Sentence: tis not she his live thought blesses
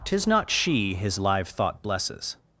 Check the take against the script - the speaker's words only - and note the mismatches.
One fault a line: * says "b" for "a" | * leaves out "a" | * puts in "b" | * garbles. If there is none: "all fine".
all fine